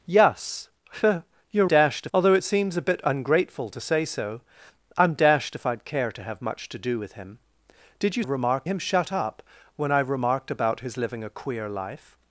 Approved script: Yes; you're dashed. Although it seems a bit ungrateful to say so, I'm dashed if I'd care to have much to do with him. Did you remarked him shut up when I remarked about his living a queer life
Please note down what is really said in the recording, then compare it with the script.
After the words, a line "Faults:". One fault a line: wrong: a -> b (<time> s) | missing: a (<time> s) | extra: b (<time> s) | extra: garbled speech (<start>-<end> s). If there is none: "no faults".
Yes; you're dashed. Although it seems a bit ungrateful to say so, I'm dashed if I'd care to have much to do with him. Did you remarked him shut up when I remarked about his living a queer life
Faults:
no faults